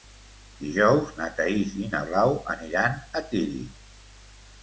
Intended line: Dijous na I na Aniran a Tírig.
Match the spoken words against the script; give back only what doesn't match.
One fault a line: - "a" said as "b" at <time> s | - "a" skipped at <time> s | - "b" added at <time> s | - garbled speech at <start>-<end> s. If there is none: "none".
- "Thaís" added at 1.4 s
- "Blau" added at 2.1 s